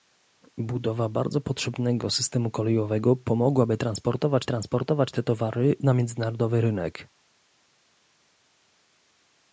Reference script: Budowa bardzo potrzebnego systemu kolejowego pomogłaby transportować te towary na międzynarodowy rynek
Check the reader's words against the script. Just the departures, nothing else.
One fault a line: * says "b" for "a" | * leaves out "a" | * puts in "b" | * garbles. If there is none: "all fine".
* puts in "transportować"